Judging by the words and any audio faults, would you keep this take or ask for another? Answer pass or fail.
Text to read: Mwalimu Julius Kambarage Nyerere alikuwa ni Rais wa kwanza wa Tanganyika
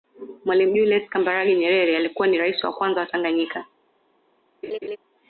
fail